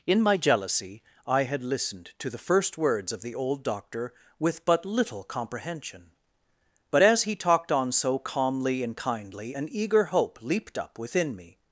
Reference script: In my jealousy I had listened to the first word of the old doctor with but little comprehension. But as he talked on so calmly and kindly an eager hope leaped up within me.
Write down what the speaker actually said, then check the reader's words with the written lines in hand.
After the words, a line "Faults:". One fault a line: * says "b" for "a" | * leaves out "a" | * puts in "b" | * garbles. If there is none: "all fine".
In my jealousy I had listened to the first words of the old doctor with but little comprehension. But as he talked on so calmly and kindly an eager hope leaped up within me.
Faults:
* says "words" for "word"